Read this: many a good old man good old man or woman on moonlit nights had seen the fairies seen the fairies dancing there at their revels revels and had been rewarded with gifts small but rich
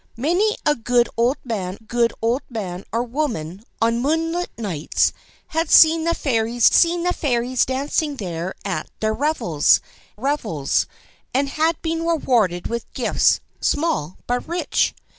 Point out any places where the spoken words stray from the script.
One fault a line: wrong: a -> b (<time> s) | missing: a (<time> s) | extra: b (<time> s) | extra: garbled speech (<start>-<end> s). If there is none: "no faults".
no faults